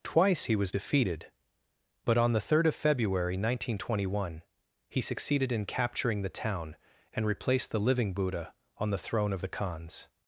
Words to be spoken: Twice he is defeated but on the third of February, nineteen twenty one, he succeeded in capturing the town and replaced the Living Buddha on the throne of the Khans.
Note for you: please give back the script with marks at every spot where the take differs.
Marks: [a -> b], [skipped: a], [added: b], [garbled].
Twice he [is -> was] defeated but on the third of February, nineteen twenty one, he succeeded in capturing the town and replaced the Living Buddha on the throne of the Khans.